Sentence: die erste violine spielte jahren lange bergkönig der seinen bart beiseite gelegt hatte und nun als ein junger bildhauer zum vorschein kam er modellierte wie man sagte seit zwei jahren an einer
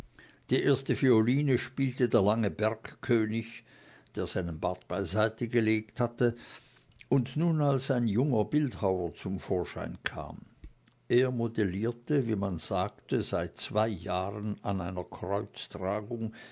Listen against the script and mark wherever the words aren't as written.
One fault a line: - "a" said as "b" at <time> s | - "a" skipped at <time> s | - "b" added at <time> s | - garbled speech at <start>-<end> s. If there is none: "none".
- "jahren" said as "der" at 2.1 s